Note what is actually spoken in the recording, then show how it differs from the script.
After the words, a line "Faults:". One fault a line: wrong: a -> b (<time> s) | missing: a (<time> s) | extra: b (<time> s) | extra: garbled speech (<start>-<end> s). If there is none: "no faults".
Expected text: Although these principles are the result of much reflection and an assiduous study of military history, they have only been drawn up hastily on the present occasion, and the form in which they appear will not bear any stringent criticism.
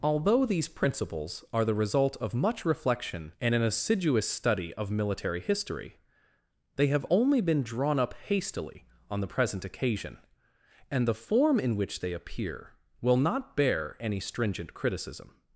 Although these principles are the result of much reflection and an assiduous study of military history, they have only been drawn up hastily on the present occasion, and the form in which they appear will not bear any stringent criticism.
Faults:
no faults